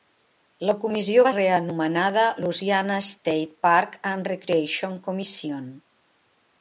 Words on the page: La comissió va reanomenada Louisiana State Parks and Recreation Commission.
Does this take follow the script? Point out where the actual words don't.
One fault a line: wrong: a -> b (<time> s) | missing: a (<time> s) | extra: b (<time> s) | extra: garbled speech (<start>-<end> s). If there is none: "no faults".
no faults